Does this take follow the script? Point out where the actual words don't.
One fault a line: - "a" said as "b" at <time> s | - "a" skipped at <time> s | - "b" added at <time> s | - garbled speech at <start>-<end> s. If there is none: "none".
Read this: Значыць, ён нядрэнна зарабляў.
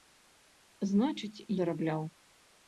- "ён нядрэнна" skipped at 1.4 s